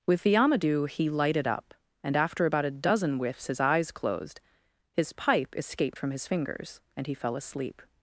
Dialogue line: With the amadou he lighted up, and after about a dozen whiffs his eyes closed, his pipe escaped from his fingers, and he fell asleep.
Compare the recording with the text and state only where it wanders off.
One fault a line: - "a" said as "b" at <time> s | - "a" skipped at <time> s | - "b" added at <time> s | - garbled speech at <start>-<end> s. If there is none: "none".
none